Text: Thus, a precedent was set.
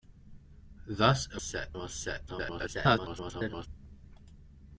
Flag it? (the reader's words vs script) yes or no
yes